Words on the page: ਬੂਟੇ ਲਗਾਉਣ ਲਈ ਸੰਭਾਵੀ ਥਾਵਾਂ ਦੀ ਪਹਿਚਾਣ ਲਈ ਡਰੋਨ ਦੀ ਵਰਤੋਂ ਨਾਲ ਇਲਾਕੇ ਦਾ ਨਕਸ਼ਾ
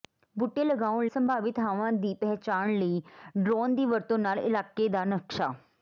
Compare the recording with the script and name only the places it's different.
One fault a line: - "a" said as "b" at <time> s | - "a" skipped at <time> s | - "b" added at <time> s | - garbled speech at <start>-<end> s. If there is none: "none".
- "ਲਈ" skipped at 1.1 s